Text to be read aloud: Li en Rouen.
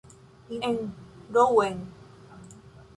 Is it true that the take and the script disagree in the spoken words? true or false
false